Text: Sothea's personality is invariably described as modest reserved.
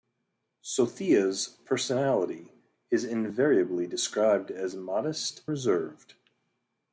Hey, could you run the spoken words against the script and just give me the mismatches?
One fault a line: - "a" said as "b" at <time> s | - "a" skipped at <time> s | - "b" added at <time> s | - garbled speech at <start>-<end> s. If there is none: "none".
none